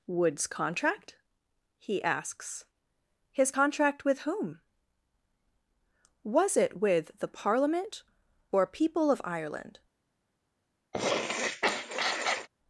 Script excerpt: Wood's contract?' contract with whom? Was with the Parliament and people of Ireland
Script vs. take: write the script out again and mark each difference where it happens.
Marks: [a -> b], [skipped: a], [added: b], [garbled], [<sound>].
Wood's contract?' [added: he asks His] contract with whom? Was [added: it] with the Parliament [and -> or] people of Ireland [sniff]